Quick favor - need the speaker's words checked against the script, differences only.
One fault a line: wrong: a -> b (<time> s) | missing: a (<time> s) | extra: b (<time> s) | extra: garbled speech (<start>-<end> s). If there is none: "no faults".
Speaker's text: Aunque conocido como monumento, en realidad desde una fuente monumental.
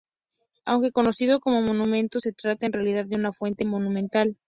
extra: se trata (2.2 s)
wrong: desde -> de (3.1 s)